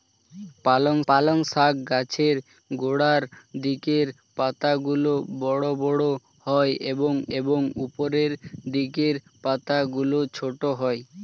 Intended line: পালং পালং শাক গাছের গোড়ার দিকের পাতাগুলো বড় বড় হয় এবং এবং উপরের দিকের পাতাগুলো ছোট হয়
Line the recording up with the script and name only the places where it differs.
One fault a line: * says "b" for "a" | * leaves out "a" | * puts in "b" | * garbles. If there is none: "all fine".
all fine